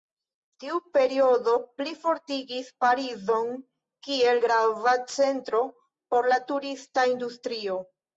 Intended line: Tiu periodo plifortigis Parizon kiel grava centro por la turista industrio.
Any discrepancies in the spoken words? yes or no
no